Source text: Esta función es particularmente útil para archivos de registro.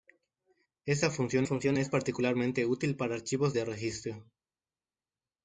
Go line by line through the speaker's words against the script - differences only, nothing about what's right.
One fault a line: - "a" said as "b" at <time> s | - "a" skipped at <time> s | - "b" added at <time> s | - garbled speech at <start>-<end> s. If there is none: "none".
- "función" added at 1.4 s